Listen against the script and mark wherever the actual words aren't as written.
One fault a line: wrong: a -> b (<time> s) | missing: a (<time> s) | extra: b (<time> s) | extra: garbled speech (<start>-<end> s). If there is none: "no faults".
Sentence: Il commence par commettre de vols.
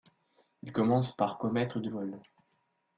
no faults